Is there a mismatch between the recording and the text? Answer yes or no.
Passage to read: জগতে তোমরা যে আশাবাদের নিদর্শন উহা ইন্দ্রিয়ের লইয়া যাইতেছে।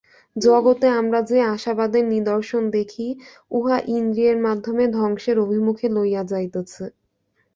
yes